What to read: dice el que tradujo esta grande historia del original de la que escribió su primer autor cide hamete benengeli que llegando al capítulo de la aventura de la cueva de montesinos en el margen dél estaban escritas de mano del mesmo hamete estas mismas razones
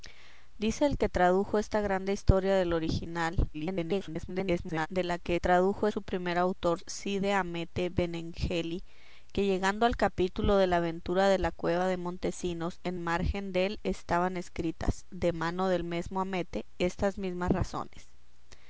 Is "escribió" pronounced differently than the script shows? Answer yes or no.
yes